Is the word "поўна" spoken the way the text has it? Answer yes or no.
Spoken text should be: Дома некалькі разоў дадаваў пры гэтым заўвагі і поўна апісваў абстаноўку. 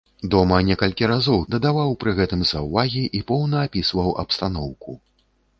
yes